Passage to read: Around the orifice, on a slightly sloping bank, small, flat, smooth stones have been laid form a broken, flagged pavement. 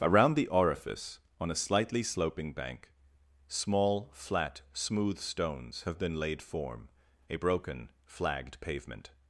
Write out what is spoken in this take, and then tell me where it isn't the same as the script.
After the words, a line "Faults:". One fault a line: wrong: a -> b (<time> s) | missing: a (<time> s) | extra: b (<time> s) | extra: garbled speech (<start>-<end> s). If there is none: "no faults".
Around the orifice, on a slightly sloping bank, small, flat, smooth stones have been laid form a broken, flagged pavement.
Faults:
no faults